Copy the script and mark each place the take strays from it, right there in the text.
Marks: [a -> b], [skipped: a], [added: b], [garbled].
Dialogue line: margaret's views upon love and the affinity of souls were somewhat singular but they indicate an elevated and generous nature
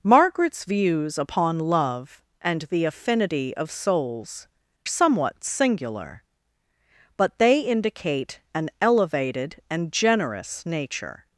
margaret's views upon love and the affinity of souls [skipped: were] somewhat singular but they indicate an elevated and generous nature